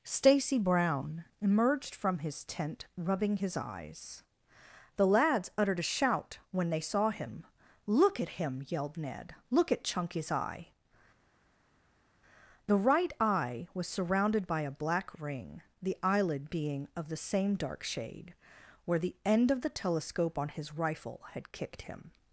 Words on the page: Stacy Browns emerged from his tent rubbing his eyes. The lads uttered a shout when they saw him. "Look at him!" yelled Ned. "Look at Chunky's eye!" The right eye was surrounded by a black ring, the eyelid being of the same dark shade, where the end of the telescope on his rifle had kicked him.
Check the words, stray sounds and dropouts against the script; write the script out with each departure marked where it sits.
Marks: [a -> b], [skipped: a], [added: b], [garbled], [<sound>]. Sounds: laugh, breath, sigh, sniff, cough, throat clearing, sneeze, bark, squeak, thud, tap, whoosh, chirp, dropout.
Stacy [Browns -> Brown] emerged from his tent rubbing his eyes. The lads uttered a shout when they saw him. "Look at him!" yelled Ned. "Look at Chunky's eye!" The right eye was surrounded by a black ring, the eyelid being of the same dark shade, where the end of the telescope on his rifle had kicked him.